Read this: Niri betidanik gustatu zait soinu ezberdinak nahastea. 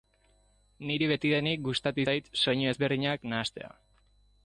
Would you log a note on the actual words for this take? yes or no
no